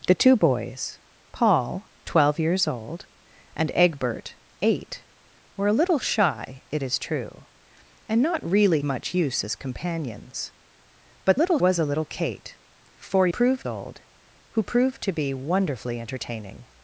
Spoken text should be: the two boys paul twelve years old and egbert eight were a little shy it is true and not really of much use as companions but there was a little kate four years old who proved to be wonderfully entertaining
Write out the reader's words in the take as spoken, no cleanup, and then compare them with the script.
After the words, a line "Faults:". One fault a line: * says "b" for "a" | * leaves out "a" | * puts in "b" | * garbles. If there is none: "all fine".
the two boys paul twelve years old and egbert eight were a little shy it is true and not really much use as companions but little was a little kate four proved old who proved to be wonderfully entertaining
Faults:
* leaves out "of"
* says "little" for "there"
* says "proved" for "years"